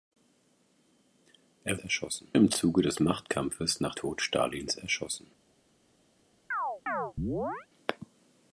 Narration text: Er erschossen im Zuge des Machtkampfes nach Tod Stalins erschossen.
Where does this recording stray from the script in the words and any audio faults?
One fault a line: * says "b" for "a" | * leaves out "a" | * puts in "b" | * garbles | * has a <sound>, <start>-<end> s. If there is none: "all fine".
* has a chirp, 6.5-7.7 s